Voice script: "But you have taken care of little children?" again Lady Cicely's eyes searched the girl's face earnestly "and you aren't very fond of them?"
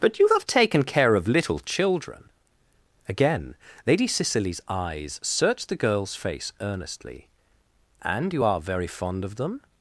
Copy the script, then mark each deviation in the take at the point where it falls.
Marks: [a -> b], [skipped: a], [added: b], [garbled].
"But you have taken care of little children?" again Lady Cicely's eyes searched the girl's face earnestly "and you [aren't -> are] very fond of them?"